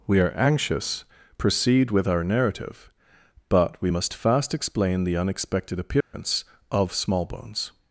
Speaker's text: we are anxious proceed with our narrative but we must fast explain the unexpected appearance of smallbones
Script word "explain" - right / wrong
right